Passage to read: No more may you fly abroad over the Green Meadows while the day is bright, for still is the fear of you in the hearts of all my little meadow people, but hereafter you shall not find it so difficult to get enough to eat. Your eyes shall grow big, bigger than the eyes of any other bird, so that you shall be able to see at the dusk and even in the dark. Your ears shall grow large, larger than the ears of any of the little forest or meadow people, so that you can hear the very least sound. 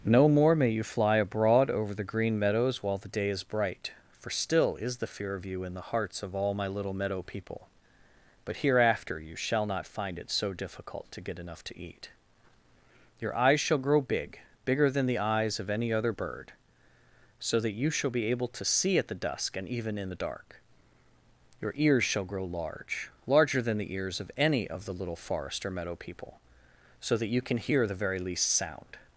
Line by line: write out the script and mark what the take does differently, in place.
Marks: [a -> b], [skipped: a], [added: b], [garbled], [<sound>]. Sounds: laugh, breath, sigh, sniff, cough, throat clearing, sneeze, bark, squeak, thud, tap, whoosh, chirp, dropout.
No more may you fly abroad over the Green Meadows while the day is bright, for still is the fear of you in the hearts of all my little meadow people, but hereafter you shall not find it so difficult to get enough to eat. Your eyes shall grow big, bigger than the eyes of any other bird, so that you shall be able to see at the dusk and even in the dark. Your ears shall grow large, larger than the ears of any of the little forest or meadow people, so that you can hear the very least sound.